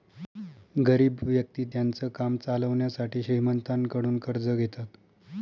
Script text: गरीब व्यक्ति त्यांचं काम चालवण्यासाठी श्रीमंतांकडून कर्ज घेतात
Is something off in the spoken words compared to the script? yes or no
no